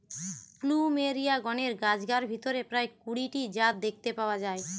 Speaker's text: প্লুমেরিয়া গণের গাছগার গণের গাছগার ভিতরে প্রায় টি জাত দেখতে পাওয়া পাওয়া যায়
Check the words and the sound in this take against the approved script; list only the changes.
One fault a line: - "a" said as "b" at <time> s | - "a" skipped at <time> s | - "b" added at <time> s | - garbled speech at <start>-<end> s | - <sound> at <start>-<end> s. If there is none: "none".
- "গণের গাছগার" skipped at 2.2 s
- "কুড়ি" added at 3.0 s
- "পাওয়া" skipped at 4.4 s